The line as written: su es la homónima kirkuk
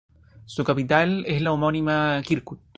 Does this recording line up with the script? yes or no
no